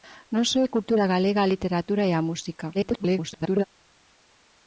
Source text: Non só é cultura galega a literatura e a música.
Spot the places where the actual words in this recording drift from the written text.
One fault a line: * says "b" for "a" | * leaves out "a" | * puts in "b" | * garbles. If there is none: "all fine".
* garbles